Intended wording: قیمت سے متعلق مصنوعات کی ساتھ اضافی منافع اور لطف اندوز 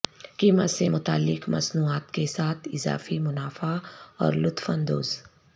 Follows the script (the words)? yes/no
no